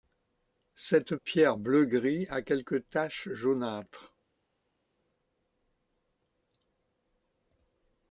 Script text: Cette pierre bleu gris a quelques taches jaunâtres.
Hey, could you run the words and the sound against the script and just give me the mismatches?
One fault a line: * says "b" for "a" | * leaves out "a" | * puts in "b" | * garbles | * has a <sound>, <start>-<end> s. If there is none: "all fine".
all fine